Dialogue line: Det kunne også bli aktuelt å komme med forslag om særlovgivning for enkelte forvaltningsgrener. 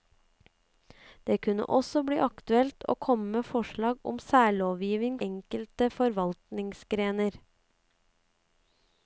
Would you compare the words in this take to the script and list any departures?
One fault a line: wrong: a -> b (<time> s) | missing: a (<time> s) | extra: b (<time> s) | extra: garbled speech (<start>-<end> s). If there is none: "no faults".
missing: for (5.2 s)